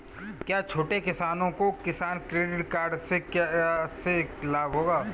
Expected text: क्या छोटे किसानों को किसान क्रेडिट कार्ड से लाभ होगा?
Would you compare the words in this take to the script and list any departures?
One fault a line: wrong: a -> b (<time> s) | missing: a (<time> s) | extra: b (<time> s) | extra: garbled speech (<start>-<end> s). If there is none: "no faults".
no faults